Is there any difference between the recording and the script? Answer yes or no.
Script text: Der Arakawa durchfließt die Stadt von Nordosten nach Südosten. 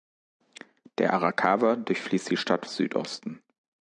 yes